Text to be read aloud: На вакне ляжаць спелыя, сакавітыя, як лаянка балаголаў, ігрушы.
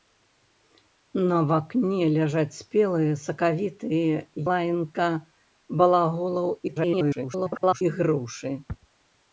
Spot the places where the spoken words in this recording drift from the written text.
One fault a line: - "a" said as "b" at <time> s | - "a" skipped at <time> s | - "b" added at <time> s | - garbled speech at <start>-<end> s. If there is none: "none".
- "як" skipped at 4.2 s
- garbled speech at 6.7-7.8 s